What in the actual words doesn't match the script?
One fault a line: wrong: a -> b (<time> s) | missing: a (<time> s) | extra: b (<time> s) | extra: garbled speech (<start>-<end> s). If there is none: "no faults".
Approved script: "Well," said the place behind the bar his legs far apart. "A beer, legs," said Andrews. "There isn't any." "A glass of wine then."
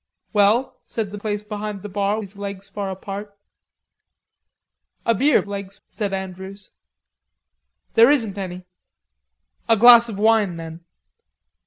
no faults